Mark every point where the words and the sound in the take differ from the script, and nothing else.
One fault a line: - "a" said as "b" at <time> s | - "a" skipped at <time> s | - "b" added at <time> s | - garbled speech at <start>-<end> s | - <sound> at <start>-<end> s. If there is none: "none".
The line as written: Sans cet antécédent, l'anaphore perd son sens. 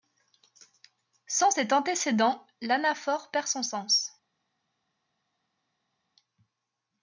none